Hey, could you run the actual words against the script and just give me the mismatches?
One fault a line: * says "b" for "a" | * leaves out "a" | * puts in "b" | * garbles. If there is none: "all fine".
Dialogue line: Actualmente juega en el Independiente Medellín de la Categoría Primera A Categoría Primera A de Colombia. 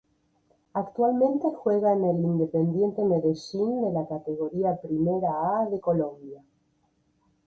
* leaves out "Categoría Primera A"